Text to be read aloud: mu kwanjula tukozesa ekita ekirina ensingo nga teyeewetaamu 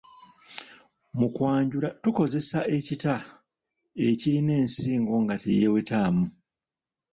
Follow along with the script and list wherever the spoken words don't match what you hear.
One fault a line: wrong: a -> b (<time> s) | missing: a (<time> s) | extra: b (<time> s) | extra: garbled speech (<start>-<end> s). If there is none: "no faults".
no faults